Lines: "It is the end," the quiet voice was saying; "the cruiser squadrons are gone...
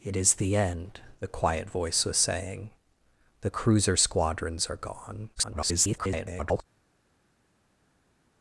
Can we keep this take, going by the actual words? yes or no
no